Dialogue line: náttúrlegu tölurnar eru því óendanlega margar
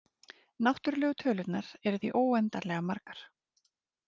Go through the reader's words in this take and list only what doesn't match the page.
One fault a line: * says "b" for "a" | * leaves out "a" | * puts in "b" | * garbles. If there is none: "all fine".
all fine